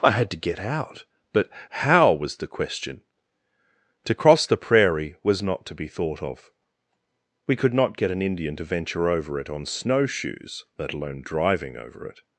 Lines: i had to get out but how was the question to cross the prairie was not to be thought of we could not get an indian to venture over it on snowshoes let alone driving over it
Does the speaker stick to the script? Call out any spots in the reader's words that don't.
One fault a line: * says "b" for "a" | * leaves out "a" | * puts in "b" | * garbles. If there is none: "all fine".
all fine